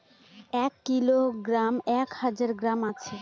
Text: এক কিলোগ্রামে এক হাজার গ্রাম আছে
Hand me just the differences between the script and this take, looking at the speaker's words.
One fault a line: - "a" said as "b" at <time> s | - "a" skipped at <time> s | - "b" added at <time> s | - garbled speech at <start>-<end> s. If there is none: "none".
none